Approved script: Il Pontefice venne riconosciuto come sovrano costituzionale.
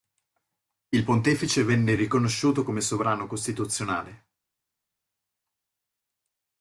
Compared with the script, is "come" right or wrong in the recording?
right